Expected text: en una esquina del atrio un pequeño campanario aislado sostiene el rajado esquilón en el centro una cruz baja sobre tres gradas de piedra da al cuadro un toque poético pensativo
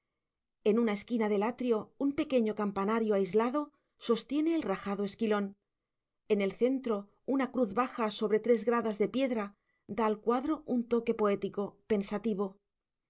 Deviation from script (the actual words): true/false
false